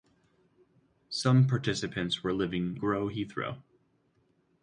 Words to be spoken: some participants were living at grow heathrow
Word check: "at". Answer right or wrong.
wrong